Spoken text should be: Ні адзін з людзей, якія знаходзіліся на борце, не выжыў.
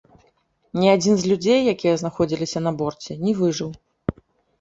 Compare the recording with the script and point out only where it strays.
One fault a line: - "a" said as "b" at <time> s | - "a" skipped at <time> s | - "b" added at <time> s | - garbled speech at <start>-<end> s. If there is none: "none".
none